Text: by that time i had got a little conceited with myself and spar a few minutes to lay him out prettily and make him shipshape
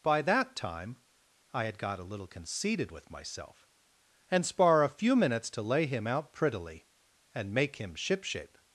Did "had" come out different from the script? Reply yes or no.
no